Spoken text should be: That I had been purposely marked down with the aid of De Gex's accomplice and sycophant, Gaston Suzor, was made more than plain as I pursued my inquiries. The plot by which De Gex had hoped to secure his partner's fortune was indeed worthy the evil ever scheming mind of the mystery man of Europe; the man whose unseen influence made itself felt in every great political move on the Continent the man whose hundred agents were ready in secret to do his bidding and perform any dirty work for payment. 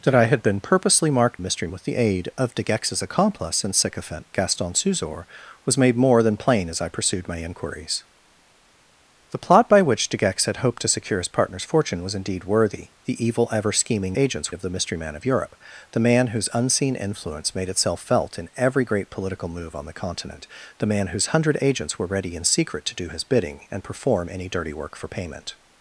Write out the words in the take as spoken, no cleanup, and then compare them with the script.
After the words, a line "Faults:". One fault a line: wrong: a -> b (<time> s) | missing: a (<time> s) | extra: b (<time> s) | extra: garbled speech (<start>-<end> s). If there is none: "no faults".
That I had been purposely marked mystery with the aid of De Gex's accomplice and sycophant, Gaston Suzor, was made more than plain as I pursued my inquiries. The plot by which De Gex had hoped to secure his partner's fortune was indeed worthy the evil ever scheming agents of the mystery man of Europe; the man whose unseen influence made itself felt in every great political move on the Continent the man whose hundred agents were ready in secret to do his bidding and perform any dirty work for payment.
Faults:
wrong: down -> mystery (1.4 s)
wrong: mind -> agents (14.2 s)